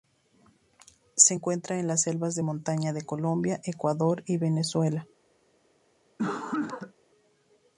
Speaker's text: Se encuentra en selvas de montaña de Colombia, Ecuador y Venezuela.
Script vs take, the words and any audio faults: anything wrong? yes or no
yes